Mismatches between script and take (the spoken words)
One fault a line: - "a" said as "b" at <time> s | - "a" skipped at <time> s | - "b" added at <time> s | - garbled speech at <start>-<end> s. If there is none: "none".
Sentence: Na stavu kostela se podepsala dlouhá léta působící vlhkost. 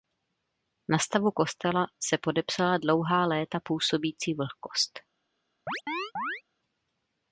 none